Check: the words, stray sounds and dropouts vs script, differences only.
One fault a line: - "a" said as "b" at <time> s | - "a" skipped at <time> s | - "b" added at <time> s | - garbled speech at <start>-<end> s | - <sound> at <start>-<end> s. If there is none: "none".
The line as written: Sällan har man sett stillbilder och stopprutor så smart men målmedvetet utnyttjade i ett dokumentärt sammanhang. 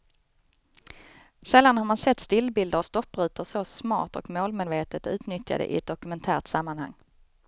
- "men" said as "och" at 4.1 s